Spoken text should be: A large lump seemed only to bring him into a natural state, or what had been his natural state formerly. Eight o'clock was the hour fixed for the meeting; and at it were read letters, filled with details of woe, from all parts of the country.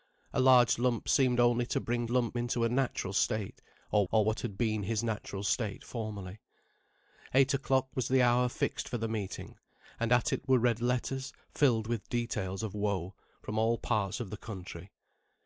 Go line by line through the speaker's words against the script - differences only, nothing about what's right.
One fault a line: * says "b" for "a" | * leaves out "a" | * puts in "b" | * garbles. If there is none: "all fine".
* says "lump" for "him"
* puts in "or"